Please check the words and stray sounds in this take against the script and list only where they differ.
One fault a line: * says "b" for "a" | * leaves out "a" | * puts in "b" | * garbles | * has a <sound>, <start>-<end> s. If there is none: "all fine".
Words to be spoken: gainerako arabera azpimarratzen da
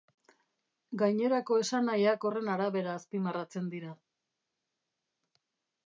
* puts in "esanahiak horren"
* says "dira" for "da"